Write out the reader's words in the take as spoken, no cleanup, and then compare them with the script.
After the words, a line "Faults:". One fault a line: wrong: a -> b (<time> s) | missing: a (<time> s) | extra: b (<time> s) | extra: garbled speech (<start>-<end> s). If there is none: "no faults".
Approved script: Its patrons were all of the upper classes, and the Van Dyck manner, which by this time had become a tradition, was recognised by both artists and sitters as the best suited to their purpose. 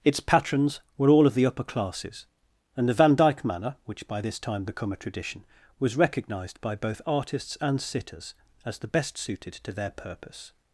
Its patrons were all of the upper classes, and the Van Dyck manner, which by this time become a tradition, was recognised by both artists and sitters as the best suited to their purpose.
Faults:
missing: had (4.6 s)